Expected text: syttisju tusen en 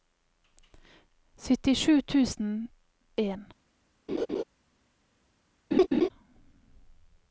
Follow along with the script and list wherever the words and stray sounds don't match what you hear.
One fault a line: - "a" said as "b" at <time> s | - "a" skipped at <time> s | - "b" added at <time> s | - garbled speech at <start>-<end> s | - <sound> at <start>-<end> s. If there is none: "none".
- laugh at 4.1-4.4 s
- laugh at 5.7-6.1 s